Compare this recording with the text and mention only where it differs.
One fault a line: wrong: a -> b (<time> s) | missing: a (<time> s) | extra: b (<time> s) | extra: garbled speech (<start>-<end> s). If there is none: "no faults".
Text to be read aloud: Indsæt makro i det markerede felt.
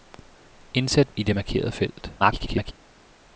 missing: makro (1.1 s)
extra: garbled speech (2.2-2.7 s)